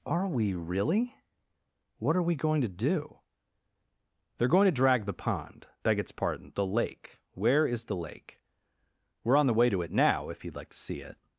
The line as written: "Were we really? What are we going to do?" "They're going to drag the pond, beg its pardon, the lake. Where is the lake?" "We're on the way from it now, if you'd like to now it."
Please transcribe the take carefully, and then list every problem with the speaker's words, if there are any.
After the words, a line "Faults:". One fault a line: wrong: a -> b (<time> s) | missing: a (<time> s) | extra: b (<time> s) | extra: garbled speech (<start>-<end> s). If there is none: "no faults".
"Are we really? What are we going to do?" "They're going to drag the pond, beg its pardon, the lake. Where is the lake?" "We're on the way to it now, if you'd like to see it."
Faults:
wrong: Were -> Are (0.1 s)
wrong: from -> to (9.7 s)
wrong: now -> see (10.8 s)